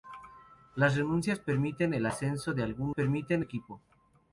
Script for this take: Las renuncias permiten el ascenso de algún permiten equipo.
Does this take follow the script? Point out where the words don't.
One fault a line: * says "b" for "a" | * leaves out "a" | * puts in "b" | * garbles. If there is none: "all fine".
all fine